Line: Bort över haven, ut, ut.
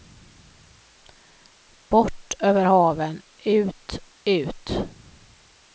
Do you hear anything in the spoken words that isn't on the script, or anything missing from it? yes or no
no